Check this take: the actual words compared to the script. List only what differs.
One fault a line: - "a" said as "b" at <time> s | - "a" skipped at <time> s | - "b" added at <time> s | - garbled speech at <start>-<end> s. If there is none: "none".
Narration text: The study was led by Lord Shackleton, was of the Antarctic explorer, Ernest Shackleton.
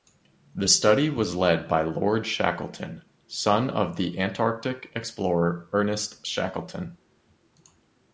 - "was" said as "son" at 3.3 s